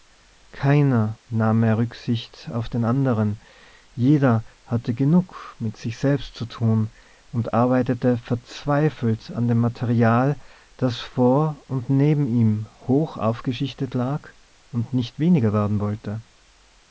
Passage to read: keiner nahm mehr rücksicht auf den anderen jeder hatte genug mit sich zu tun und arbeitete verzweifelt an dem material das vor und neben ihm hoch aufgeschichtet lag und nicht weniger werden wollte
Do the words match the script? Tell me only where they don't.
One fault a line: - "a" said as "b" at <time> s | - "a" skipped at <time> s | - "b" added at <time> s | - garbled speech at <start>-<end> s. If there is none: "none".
- "selbst" added at 6.0 s